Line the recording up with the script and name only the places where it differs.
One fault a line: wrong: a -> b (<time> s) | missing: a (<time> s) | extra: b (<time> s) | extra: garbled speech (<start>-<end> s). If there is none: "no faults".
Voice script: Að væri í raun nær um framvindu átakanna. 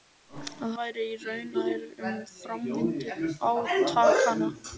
no faults